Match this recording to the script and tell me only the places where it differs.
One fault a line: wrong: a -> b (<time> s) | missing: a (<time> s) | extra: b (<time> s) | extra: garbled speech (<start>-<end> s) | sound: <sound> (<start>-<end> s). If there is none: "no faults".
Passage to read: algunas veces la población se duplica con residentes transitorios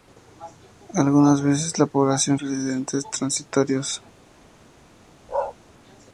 missing: se duplica con (2.4 s)
sound: bark (5.3-5.6 s)